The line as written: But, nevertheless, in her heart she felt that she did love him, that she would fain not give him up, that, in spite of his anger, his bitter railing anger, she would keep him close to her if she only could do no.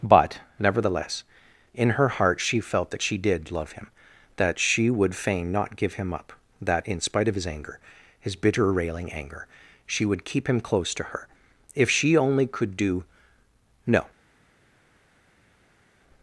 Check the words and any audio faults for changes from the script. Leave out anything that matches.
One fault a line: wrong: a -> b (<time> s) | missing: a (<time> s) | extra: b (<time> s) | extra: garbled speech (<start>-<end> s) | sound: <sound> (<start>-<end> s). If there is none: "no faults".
no faults